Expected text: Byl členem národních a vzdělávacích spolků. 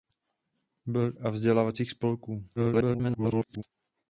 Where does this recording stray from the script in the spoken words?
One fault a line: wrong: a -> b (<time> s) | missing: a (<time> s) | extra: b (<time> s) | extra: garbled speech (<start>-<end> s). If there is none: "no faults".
missing: členem národních (1.1 s)
extra: garbled speech (2.6-3.6 s)